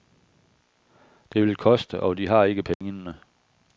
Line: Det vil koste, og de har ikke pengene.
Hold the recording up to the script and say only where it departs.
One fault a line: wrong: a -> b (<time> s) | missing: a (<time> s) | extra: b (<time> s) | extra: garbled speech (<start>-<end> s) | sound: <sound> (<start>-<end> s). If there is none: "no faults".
sound: dropout (2.7-2.8 s)